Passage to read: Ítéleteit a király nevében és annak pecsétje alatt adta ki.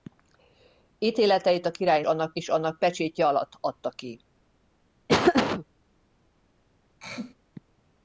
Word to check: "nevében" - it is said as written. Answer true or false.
false